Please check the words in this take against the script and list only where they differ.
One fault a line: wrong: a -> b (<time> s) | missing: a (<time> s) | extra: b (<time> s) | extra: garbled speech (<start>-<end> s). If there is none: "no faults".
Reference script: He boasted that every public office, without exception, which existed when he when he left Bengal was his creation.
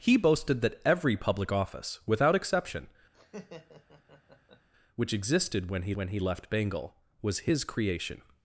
no faults